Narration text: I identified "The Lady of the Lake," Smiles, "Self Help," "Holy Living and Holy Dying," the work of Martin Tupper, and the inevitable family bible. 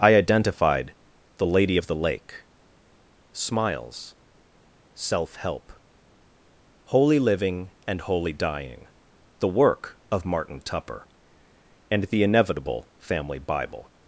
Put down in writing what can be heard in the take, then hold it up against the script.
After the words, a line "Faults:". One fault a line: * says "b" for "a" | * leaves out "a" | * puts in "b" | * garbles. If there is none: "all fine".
I identified "The Lady of the Lake," Smiles, "Self Help," "Holy Living and Holy Dying," the work of Martin Tupper, and the inevitable family bible.
Faults:
all fine